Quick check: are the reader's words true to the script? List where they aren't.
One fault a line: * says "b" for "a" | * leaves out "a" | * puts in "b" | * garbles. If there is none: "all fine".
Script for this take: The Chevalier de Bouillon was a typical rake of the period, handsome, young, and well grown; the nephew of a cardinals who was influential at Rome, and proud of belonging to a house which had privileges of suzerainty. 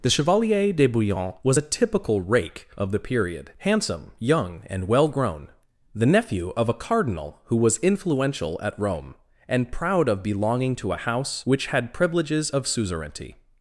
* says "cardinal" for "cardinals"